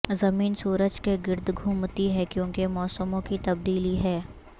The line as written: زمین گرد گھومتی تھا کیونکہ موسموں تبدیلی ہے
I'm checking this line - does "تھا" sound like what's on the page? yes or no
no